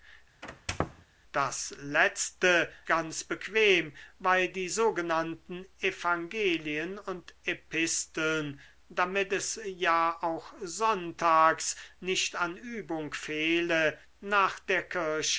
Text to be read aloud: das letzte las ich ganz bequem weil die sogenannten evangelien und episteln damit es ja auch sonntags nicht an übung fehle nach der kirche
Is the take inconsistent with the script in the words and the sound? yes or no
yes